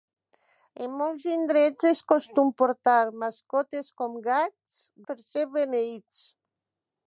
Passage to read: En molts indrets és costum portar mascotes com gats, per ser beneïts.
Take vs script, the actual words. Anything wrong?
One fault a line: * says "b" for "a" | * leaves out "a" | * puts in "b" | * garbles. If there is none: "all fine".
all fine